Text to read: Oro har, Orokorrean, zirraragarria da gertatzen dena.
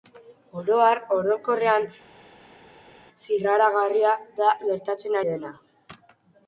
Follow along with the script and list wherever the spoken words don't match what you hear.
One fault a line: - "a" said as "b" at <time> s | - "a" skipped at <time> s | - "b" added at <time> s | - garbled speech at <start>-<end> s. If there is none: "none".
none